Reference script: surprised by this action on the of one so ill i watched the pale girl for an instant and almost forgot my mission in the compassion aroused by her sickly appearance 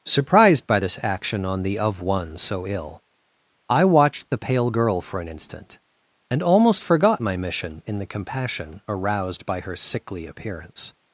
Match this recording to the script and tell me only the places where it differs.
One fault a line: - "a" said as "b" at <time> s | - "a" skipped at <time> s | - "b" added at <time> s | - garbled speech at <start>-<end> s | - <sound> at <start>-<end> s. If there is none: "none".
none